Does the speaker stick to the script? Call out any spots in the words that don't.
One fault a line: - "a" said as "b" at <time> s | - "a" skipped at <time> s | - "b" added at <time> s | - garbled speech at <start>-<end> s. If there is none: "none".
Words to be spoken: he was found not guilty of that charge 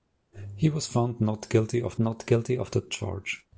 - "not guilty of" added at 2.0 s